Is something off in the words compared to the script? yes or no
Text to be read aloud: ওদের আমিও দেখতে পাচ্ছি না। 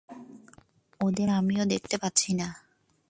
no